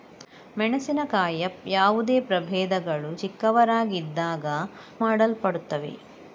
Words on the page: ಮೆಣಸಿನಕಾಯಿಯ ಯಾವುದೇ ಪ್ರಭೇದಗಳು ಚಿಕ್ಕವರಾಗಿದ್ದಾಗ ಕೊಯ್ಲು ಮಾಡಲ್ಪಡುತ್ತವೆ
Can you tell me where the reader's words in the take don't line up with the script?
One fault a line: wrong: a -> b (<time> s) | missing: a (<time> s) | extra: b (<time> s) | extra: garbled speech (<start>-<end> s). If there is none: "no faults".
missing: ಕೊಯ್ಲು (4.4 s)